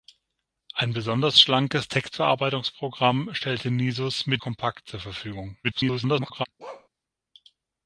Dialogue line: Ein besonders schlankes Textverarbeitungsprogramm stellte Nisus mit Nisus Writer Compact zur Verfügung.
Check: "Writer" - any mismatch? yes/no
yes